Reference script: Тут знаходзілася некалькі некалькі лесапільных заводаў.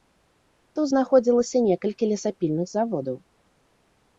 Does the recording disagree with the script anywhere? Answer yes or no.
yes